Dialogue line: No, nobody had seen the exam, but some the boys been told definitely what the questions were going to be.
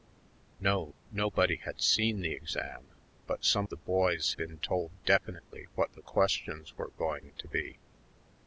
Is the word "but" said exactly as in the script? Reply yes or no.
yes